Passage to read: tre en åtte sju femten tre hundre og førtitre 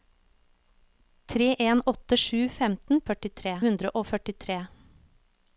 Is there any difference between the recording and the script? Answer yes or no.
yes